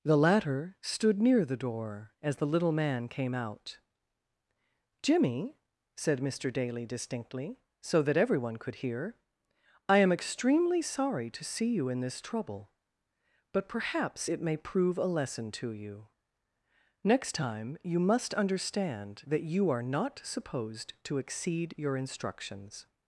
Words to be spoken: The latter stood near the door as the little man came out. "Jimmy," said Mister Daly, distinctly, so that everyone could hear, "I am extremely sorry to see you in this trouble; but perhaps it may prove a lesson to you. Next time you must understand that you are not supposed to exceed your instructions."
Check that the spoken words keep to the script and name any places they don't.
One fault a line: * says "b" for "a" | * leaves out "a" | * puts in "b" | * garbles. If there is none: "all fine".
all fine